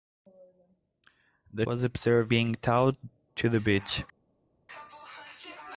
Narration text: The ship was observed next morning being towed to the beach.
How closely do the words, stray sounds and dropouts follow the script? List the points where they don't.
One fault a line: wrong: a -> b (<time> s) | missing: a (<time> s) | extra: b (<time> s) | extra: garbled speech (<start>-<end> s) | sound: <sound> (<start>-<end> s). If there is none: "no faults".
missing: ship (1.6 s)
missing: next morning (2.3 s)